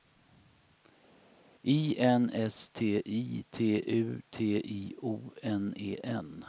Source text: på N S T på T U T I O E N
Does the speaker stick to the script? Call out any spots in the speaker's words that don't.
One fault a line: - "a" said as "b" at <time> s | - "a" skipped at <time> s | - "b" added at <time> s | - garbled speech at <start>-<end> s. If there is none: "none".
- "på" said as "I" at 1.6 s
- "på" said as "I" at 3.0 s
- "N" added at 5.4 s